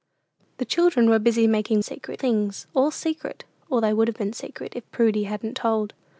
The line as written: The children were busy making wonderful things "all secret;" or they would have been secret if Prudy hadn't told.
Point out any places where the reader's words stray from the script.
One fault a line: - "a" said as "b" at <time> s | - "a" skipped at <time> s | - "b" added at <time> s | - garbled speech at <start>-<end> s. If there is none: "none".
- "wonderful" said as "secret" at 1.8 s